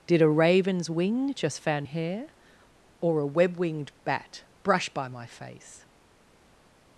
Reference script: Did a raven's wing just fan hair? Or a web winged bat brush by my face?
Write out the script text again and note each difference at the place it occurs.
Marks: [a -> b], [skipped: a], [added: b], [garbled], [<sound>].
Did a raven's wing just fan hair? Or a web winged bat brush by my face?